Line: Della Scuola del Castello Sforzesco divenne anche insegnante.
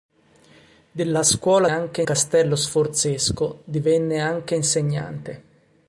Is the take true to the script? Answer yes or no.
no